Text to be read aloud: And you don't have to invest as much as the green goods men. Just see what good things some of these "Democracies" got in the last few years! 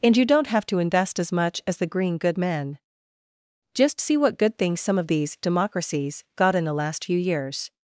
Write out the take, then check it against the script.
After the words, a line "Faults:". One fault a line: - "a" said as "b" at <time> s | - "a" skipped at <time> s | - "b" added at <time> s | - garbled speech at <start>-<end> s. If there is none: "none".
And you don't have to invest as much as the green good men. Just see what good things some of these "Democracies" got in the last few years!
Faults:
- "goods" said as "good" at 2.2 s